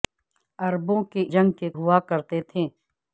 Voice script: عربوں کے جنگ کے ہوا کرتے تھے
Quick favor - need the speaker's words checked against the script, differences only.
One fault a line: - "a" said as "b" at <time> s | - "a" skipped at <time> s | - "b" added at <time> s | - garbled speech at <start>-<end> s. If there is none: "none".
none